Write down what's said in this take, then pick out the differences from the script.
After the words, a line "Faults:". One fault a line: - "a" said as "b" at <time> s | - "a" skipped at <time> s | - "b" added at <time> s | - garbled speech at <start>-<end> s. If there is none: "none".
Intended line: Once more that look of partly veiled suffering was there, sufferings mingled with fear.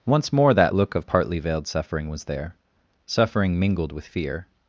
Once more that look of partly veiled suffering was there, suffering mingled with fear.
Faults:
- "sufferings" said as "suffering" at 3.1 s